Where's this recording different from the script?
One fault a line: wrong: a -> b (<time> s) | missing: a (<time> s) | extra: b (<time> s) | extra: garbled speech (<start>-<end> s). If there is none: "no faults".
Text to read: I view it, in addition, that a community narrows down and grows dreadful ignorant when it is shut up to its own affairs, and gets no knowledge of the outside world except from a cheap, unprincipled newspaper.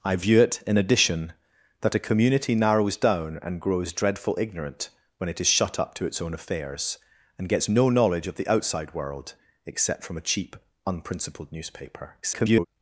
extra: garbled speech (12.2-12.7 s)